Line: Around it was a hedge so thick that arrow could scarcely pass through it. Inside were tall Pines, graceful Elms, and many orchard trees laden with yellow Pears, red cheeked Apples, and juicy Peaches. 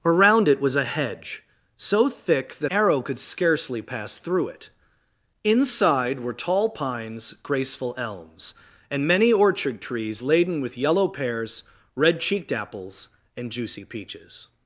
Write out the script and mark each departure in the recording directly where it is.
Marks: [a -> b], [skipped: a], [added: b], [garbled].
Around it was a hedge so thick that arrow could scarcely pass through it. Inside were tall Pines, graceful Elms, and many orchard trees laden with yellow Pears, red cheeked Apples, and juicy Peaches.